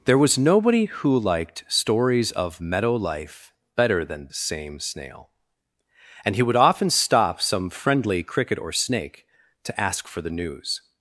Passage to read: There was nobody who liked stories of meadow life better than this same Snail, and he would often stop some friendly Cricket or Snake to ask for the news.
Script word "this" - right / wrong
wrong